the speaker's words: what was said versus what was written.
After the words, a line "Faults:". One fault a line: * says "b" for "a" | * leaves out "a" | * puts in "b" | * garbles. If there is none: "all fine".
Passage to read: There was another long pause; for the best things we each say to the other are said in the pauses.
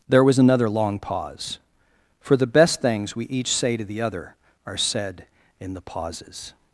There was another long pause; for the best things we each say to the other are said in the pauses.
Faults:
all fine